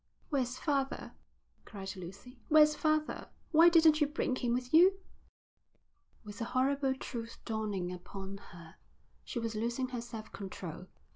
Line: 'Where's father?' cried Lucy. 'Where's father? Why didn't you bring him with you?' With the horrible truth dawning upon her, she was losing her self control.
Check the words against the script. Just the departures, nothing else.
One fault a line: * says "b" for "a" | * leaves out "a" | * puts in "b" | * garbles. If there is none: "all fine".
all fine